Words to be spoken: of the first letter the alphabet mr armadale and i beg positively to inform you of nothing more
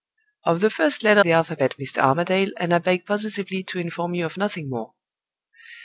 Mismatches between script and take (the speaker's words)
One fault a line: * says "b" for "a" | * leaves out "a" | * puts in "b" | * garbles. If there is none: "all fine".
all fine